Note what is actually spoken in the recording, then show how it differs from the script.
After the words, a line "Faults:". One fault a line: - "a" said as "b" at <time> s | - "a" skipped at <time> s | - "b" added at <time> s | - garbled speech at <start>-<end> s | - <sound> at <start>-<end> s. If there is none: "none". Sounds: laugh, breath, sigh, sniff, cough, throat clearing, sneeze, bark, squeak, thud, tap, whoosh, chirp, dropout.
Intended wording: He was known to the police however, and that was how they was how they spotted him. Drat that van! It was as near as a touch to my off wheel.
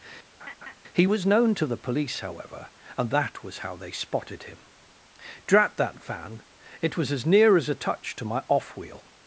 He was known to the police however, and that was how they spotted him. Drat that van! It was as near as a touch to my off wheel.
Faults:
- laugh at 0.4-0.8 s
- "was how they" skipped at 3.9 s